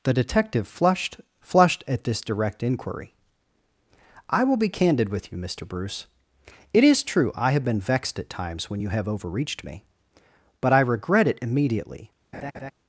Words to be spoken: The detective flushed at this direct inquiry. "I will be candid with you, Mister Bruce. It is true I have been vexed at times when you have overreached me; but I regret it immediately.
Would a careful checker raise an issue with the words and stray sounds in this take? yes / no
yes